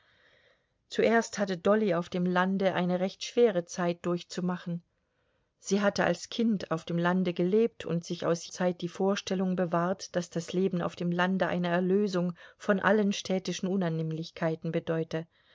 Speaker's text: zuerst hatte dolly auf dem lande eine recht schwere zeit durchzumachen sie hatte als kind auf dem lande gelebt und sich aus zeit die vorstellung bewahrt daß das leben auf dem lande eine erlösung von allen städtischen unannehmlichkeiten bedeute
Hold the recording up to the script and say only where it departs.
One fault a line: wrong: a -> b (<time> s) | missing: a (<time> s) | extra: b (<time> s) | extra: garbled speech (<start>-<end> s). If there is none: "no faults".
no faults